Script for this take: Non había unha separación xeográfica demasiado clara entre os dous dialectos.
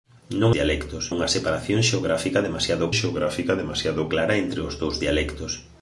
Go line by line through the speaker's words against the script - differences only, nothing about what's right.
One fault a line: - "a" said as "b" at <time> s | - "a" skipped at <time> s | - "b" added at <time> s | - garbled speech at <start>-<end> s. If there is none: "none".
- "había" said as "dialectos" at 0.6 s
- "xeográfica demasiado" added at 3.0 s